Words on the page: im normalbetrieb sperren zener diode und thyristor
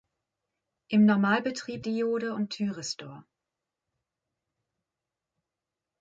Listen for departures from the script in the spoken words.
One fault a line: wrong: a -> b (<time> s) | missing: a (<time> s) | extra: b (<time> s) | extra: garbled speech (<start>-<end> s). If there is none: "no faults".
missing: sperren zener (1.9 s)